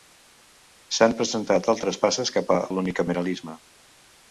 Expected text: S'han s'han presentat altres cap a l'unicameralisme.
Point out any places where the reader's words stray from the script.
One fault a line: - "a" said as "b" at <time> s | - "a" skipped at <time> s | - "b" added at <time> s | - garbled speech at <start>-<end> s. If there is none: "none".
- "s'han" skipped at 1.1 s
- "passes" added at 2.1 s